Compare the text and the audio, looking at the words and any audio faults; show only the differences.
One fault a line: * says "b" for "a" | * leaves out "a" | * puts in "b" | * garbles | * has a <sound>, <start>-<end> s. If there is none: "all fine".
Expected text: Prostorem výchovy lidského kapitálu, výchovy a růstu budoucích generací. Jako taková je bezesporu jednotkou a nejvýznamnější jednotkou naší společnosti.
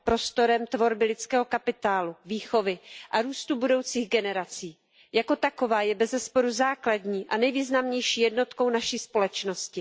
* says "tvorby" for "výchovy"
* says "základní" for "jednotkou"